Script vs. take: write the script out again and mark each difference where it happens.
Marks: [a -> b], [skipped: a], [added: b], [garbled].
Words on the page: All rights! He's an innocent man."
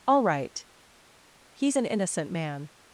All [rights! -> right] He's an innocent man."